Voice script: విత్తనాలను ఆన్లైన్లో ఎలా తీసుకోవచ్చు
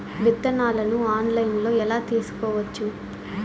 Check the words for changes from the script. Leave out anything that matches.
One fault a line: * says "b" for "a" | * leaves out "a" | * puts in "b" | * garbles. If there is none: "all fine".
all fine